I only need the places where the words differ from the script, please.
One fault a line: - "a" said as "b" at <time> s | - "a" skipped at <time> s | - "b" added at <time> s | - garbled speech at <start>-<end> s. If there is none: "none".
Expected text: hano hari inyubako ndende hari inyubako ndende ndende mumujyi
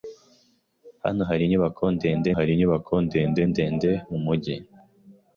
none